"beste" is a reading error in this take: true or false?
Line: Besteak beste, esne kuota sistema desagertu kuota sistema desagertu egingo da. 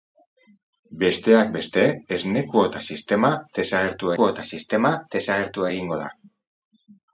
false